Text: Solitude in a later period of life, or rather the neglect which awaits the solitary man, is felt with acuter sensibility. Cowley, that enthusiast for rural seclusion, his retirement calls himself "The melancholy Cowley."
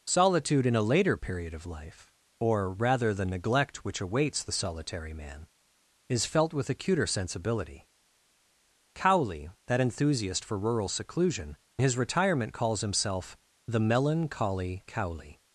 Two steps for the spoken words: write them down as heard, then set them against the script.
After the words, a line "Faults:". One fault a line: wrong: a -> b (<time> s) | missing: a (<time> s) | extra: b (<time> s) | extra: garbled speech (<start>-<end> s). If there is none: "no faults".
Solitude in a later period of life, or rather the neglect which awaits the solitary man, is felt with acuter sensibility. Cowley, that enthusiast for rural seclusion, his retirement calls himself "The melancholy Cowley."
Faults:
no faults